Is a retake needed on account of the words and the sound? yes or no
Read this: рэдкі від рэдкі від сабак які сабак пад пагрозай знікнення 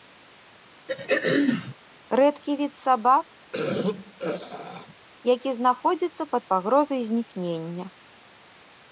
yes